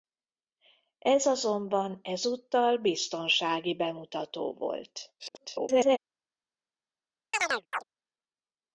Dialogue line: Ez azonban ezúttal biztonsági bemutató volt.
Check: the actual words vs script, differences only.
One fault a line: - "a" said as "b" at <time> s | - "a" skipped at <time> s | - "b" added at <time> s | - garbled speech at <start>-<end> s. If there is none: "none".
- garbled speech at 5.2-6.0 s